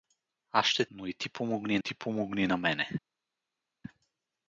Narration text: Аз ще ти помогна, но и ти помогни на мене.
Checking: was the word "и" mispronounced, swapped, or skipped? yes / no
yes